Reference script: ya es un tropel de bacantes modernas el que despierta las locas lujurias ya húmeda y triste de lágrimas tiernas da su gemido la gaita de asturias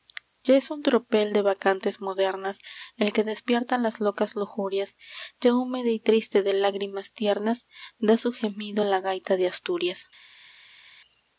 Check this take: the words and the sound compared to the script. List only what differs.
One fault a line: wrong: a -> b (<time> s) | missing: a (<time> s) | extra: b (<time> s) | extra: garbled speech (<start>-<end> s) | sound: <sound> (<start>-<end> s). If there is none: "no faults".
no faults